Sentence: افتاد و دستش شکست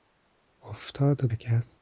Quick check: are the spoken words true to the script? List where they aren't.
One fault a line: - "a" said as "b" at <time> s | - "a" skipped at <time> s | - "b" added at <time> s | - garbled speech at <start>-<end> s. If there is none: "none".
- "دستش" skipped at 1.3 s